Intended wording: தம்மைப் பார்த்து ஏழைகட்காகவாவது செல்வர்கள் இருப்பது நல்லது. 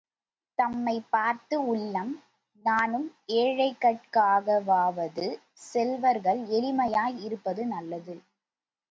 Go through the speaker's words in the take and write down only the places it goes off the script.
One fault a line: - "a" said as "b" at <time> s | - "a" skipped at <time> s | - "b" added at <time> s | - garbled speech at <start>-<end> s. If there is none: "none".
- "உள்ளம் நாணும்" added at 1.6 s
- "எளிமையாய்" added at 6.5 s